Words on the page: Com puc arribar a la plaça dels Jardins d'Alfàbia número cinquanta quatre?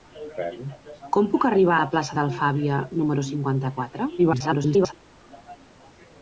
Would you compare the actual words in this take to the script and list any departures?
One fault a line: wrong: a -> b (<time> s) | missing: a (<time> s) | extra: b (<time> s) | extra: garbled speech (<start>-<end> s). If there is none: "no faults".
missing: a (1.8 s)
missing: dels Jardins (2.2 s)
extra: garbled speech (4.2-4.9 s)